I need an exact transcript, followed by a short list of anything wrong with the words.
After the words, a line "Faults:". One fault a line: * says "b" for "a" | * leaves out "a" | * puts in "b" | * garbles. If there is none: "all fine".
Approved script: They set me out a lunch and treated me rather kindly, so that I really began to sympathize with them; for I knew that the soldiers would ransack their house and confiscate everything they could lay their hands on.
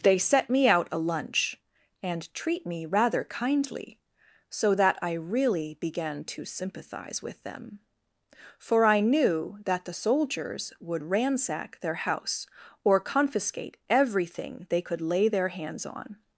They set me out a lunch and treat me rather kindly, so that I really began to sympathize with them; for I knew that the soldiers would ransack their house or confiscate everything they could lay their hands on.
Faults:
* says "treat" for "treated"
* says "or" for "and"